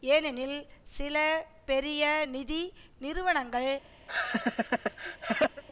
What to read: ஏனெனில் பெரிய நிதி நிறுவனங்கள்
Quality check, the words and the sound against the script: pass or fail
fail